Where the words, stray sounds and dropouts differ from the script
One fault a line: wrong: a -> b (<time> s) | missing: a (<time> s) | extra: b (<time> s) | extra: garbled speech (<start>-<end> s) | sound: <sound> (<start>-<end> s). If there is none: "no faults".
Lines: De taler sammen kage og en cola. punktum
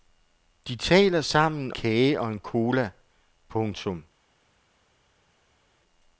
no faults